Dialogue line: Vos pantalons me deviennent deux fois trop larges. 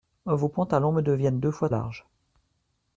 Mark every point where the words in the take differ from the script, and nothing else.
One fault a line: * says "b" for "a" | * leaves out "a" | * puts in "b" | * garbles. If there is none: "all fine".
* leaves out "trop"